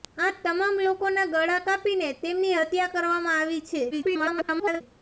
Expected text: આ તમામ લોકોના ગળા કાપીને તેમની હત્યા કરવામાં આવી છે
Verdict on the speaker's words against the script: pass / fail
fail